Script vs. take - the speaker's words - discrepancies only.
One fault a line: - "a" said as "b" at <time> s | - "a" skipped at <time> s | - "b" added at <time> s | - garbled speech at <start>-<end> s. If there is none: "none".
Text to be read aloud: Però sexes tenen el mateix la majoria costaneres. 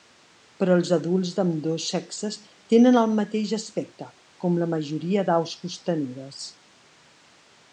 - "els adults d'ambdós" added at 0.8 s
- "aspecte com" added at 3.6 s
- "d'aus" added at 5.3 s